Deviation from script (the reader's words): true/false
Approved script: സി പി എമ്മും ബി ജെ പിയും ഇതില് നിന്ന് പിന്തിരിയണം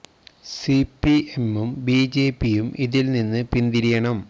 false